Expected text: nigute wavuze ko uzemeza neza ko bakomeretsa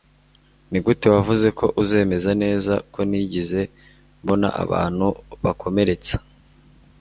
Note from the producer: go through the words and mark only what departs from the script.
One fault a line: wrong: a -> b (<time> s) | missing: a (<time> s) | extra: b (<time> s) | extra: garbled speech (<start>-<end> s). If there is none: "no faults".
extra: ntigeze mbona abantu (3.1 s)